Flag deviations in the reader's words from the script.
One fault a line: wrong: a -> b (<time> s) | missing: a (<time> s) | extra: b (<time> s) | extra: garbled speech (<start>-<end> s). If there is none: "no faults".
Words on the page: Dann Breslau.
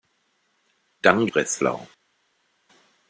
no faults